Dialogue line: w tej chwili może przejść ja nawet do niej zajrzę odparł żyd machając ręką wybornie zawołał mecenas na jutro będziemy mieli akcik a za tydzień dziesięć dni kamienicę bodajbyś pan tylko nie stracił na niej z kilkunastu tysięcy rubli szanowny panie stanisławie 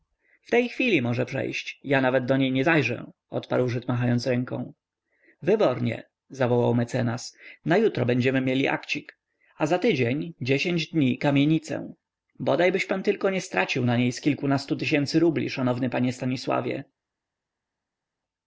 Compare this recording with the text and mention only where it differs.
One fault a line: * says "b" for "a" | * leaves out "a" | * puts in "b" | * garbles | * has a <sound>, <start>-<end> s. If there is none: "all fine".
* puts in "nie"